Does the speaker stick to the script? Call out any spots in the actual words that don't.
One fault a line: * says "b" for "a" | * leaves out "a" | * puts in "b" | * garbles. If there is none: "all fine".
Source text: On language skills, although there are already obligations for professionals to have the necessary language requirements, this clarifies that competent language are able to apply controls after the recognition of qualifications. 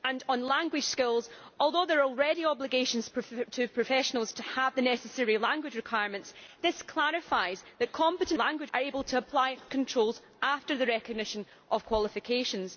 all fine